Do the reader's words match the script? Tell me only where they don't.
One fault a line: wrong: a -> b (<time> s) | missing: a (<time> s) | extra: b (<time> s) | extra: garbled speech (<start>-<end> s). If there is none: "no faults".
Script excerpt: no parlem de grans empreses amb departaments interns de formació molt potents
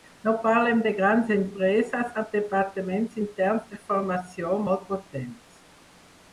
no faults